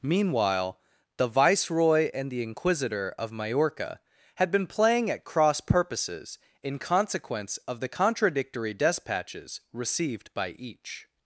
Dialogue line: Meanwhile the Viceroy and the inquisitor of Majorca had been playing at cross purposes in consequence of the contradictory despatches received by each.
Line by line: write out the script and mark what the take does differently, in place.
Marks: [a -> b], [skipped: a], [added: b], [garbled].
Meanwhile the Viceroy and the inquisitor of Majorca had been playing at cross purposes in consequence of the contradictory despatches received by each.